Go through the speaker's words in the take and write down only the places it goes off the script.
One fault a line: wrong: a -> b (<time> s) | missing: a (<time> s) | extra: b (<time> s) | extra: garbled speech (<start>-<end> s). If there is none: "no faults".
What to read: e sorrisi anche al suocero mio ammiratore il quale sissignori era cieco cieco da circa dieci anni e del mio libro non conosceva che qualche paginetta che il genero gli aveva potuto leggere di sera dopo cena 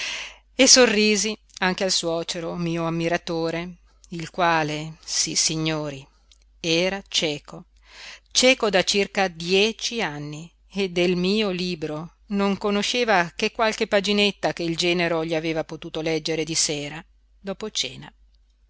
no faults